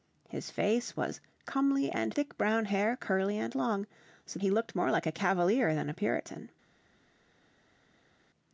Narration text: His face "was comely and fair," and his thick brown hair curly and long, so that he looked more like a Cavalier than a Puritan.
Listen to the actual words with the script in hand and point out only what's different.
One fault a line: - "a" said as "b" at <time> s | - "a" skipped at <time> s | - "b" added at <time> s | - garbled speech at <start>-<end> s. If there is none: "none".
- "fair and his" skipped at 2.1 s
- "that" skipped at 4.4 s